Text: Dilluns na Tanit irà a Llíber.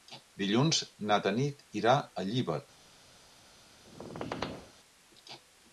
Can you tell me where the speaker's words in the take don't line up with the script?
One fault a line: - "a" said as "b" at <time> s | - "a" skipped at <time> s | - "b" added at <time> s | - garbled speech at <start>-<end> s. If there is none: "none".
none